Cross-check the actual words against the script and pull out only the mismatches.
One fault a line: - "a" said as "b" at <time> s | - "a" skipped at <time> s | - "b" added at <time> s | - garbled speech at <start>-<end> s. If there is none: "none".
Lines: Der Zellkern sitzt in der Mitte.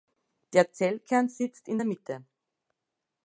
none